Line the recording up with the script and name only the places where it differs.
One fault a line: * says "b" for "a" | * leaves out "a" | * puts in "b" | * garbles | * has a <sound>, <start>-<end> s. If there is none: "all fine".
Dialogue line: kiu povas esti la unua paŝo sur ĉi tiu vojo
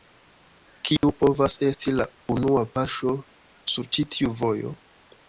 * has a dropout, 1.0-1.0 s